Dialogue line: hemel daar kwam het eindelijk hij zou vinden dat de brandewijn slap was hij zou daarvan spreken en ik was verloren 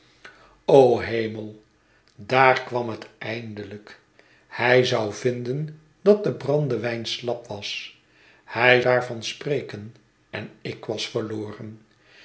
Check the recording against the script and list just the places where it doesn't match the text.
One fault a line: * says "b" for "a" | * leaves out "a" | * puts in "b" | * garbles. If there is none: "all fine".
* leaves out "zou"